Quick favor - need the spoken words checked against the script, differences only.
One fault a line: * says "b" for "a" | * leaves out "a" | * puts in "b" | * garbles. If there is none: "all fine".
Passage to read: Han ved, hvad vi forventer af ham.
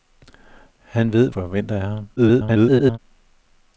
* leaves out "hvad vi"
* garbles